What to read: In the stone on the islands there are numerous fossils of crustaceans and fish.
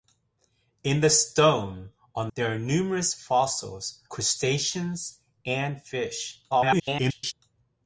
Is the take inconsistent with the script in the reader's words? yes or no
yes